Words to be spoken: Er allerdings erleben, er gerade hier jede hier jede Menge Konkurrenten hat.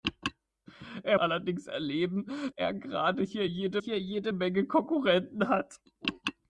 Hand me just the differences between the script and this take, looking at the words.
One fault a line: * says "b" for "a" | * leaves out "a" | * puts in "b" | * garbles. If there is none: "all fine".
all fine